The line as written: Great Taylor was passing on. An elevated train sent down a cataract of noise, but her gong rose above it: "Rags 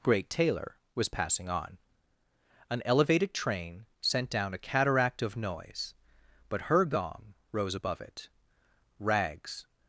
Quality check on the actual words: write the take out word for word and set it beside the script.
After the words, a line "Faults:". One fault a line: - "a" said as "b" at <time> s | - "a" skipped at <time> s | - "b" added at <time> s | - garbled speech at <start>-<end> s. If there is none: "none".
Great Taylor was passing on. An elevated train sent down a cataract of noise, but her gong rose above it: "Rags
Faults:
none